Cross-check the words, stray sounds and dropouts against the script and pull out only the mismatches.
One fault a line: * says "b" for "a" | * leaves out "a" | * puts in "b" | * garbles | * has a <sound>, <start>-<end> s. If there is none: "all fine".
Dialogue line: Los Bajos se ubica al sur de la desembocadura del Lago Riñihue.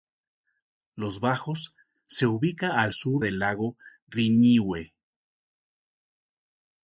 * leaves out "de la desembocadura"